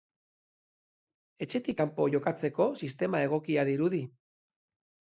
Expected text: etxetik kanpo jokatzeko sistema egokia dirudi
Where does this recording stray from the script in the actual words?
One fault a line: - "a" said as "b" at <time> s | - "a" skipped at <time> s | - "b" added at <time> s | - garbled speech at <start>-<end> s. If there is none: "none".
none